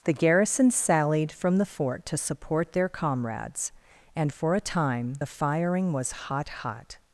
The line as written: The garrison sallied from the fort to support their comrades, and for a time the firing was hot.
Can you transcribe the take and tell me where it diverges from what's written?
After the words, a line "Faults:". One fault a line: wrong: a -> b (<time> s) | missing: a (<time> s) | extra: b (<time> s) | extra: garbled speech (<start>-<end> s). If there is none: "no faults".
The garrison sallied from the fort to support their comrades, and for a time the firing was hot hot.
Faults:
extra: hot (6.5 s)